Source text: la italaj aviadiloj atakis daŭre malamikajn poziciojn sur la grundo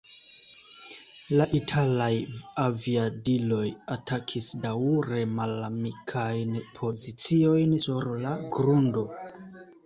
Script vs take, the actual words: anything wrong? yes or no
no